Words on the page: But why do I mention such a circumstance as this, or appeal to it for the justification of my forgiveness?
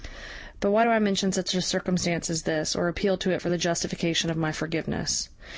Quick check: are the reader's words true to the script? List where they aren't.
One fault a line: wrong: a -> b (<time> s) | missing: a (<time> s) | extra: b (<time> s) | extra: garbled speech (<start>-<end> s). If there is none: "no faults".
no faults